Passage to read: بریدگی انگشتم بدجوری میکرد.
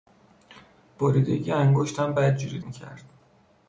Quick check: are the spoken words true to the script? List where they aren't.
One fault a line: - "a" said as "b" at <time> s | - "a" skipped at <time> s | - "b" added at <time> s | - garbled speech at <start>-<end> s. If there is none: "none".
none